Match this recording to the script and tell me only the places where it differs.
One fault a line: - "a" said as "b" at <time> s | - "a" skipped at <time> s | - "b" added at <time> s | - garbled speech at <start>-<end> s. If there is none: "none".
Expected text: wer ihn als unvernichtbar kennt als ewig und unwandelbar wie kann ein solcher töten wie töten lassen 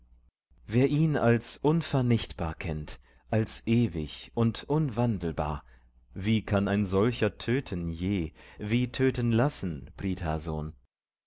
- "je" added at 7.9 s